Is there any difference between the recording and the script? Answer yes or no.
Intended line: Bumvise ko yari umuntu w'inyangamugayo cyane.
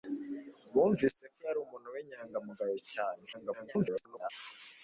yes